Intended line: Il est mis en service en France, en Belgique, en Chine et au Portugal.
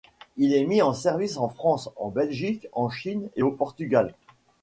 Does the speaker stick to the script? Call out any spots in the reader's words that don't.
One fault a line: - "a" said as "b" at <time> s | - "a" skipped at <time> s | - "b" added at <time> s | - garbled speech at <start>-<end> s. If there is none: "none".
none